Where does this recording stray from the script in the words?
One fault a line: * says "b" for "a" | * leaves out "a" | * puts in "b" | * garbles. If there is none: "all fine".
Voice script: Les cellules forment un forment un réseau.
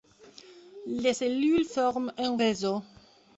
* leaves out "forment un"